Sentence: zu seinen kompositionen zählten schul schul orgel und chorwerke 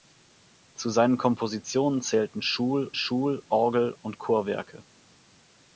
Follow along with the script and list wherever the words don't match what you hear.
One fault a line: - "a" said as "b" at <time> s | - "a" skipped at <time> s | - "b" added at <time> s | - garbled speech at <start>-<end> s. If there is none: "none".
none